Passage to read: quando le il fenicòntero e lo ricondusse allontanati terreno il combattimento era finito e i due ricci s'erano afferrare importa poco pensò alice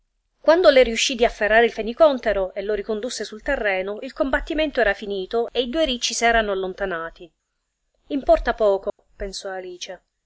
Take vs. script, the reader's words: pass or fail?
fail